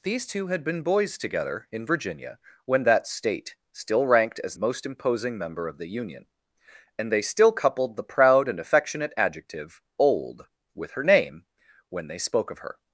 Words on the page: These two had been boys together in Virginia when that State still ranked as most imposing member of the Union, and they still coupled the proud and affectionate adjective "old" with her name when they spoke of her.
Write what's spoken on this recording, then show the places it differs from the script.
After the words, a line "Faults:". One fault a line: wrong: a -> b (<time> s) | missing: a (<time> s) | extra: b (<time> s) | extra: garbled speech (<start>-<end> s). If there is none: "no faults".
These two had been boys together in Virginia when that State still ranked as most imposing member of the Union, and they still coupled the proud and affectionate adjective "old" with her name when they spoke of her.
Faults:
no faults